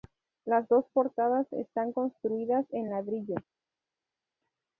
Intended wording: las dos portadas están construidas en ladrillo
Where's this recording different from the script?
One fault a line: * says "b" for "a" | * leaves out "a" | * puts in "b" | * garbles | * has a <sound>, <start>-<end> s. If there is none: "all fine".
all fine